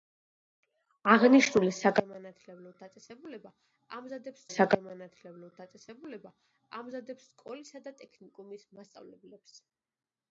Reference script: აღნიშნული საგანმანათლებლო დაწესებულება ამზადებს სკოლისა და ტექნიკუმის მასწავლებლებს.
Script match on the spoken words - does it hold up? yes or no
no